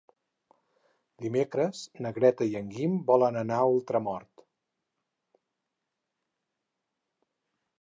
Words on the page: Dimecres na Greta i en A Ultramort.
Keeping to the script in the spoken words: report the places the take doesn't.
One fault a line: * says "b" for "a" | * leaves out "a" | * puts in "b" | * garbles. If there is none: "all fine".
* puts in "Guim volen anar"